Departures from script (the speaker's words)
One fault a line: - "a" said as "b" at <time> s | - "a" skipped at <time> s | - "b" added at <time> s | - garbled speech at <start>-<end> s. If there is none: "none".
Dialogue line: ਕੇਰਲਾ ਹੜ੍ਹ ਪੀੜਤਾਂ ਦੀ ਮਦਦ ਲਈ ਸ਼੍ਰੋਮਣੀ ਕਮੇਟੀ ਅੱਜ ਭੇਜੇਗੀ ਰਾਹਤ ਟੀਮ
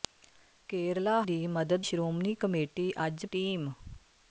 - "ਹੜ੍ਹ ਪੀੜਤਾਂ" skipped at 1.2 s
- "ਲਈ" skipped at 1.9 s
- "ਭੇਜੇਗੀ ਰਾਹਤ" skipped at 3.3 s